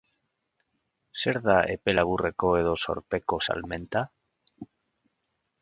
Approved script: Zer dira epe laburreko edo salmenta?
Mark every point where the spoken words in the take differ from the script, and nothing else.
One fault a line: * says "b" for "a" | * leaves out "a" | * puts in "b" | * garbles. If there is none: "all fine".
* says "da" for "dira"
* puts in "zorpeko"